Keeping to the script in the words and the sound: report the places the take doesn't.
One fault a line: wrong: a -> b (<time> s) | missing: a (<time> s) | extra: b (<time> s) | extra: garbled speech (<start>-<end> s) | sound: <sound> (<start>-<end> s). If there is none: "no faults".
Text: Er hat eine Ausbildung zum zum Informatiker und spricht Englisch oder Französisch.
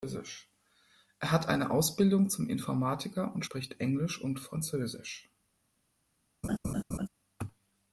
missing: zum (2.5 s)
wrong: oder -> und (4.2 s)
sound: laugh (6.4-7.1 s)